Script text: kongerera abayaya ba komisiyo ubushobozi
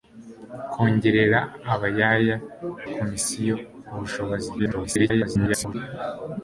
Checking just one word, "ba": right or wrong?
wrong